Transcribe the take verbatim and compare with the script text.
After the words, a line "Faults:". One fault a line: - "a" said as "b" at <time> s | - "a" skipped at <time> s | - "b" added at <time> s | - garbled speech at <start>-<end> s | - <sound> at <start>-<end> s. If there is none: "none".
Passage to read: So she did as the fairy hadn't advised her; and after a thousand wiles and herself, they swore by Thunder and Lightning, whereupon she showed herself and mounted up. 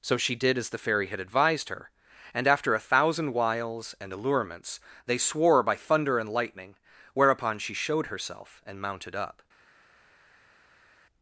So she did as the fairy had advised her; and after a thousand wiles and allurements, they swore by Thunder and Lightning, whereupon she showed herself and mounted up.
Faults:
- "hadn't" said as "had" at 1.1 s
- "herself" said as "allurements" at 4.1 s